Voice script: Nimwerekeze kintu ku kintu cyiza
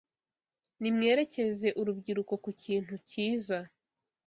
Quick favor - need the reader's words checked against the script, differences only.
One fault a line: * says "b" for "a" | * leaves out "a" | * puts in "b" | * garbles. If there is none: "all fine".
* says "urubyiruko" for "kintu"